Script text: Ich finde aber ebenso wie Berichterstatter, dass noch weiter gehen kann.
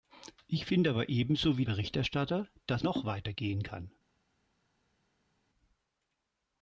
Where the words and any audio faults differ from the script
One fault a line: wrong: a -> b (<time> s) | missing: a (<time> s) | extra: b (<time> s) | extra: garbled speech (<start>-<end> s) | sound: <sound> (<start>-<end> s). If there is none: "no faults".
no faults